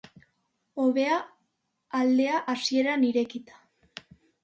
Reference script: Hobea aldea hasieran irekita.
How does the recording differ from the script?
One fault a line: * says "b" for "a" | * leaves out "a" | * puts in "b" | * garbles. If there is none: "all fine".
all fine